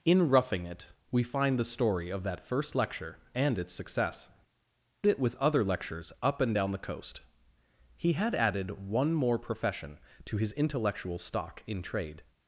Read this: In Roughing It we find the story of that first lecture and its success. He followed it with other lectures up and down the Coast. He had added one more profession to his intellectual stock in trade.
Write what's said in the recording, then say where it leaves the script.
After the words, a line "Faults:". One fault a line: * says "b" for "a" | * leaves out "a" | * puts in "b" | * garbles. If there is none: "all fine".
In Roughing It we find the story of that first lecture and its success. It with other lectures up and down the Coast. He had added one more profession to his intellectual stock in trade.
Faults:
* leaves out "He followed"